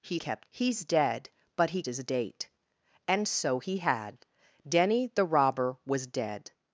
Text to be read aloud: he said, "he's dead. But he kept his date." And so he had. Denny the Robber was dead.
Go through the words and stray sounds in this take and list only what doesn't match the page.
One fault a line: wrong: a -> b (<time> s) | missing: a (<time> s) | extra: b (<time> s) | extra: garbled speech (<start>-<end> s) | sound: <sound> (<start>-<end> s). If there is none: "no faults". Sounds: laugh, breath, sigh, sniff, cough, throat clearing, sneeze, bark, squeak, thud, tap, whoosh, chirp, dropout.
wrong: said -> kept (0.2 s)
missing: kept (1.8 s)